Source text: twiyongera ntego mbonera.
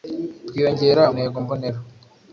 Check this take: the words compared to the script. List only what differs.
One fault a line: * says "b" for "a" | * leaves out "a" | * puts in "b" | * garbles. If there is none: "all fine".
all fine